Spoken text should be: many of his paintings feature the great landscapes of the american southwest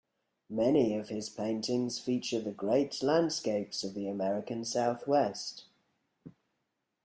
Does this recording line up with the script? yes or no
yes